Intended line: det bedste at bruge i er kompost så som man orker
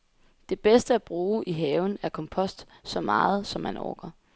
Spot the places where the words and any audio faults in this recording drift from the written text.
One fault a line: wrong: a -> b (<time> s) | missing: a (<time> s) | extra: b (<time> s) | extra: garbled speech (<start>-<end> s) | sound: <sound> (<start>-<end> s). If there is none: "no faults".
extra: haven (1.5 s)
extra: meget (3.0 s)